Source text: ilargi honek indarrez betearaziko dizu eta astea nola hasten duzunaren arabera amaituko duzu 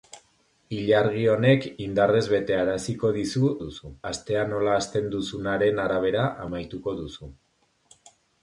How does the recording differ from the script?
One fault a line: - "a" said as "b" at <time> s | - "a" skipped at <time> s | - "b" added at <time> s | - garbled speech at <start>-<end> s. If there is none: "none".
- "eta" said as "duzu" at 3.6 s